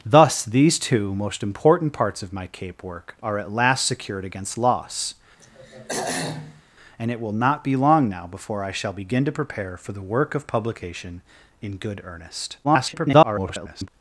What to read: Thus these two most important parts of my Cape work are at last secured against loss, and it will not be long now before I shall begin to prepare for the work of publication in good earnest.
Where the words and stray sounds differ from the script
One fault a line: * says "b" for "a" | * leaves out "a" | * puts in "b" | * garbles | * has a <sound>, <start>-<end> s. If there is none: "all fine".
* has a throat clearing, 5.4-6.6 s
* garbles